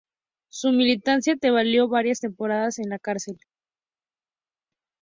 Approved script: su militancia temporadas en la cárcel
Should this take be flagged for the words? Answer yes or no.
yes